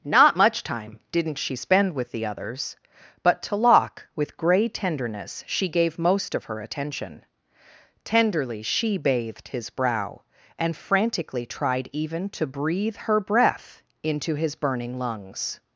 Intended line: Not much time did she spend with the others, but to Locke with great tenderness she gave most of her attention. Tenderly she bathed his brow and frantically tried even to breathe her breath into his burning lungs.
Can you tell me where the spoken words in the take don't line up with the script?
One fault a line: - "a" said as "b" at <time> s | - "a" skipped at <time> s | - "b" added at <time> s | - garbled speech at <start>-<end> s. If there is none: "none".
- "did" said as "didn't" at 1.1 s
- "great" said as "grey" at 4.4 s